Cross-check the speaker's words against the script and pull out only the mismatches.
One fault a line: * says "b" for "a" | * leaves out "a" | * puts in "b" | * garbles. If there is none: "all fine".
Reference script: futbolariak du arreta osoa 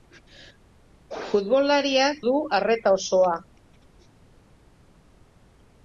all fine